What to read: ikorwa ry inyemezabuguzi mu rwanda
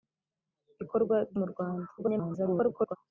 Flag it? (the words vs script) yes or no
yes